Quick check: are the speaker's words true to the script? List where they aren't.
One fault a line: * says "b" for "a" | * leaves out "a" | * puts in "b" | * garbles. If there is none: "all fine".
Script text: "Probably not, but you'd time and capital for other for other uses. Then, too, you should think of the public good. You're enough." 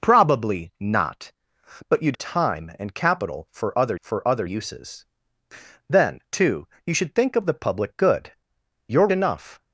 all fine